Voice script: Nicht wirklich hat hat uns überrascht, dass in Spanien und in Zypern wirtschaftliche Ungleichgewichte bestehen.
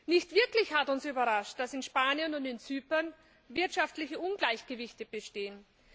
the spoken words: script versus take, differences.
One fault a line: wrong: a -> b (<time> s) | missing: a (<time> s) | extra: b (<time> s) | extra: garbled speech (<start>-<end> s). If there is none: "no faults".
missing: hat (0.9 s)